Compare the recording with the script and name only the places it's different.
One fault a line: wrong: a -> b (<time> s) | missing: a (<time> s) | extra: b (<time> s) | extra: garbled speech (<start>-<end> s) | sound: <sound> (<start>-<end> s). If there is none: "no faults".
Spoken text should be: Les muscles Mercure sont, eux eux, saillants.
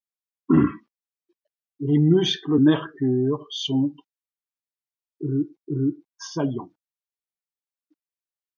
no faults